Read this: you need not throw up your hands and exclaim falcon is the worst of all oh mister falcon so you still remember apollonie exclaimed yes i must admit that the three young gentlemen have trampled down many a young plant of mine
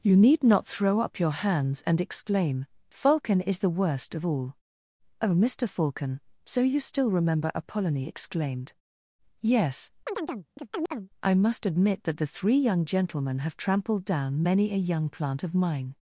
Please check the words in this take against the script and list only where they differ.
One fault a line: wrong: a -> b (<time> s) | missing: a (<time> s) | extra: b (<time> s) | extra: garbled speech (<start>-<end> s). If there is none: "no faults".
no faults